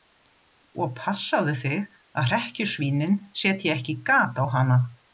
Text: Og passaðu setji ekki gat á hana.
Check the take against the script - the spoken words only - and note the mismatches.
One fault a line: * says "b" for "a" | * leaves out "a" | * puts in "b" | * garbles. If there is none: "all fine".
* puts in "þig að hrekkjusvínin"